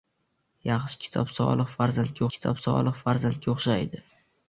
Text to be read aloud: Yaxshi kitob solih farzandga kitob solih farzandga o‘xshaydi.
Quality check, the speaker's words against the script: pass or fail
pass